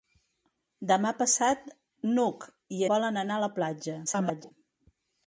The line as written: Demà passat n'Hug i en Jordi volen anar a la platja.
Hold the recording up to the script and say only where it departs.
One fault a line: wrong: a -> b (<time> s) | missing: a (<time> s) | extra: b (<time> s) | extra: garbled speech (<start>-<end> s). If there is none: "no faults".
missing: en Jordi (2.8 s)
extra: garbled speech (4.1-4.5 s)